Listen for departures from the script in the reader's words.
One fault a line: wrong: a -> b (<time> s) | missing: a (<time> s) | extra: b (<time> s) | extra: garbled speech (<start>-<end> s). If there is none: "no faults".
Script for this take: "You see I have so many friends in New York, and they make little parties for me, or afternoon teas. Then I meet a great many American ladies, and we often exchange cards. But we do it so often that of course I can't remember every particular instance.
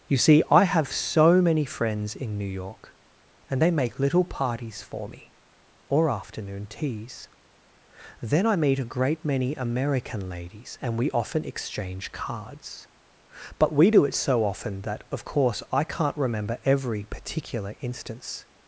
no faults